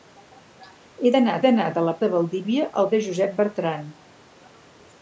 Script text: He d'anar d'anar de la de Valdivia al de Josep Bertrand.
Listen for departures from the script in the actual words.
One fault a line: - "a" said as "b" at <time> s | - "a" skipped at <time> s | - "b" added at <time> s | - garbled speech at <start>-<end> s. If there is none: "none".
none